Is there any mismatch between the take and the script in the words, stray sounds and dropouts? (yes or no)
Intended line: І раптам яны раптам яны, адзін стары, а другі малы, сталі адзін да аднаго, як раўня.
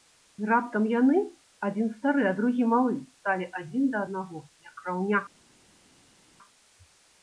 yes